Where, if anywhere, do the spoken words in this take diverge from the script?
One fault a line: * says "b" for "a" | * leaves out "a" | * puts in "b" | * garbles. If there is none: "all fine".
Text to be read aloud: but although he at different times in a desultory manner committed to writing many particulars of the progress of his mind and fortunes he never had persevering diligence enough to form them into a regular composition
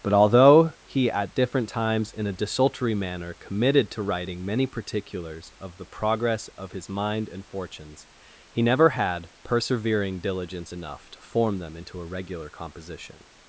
all fine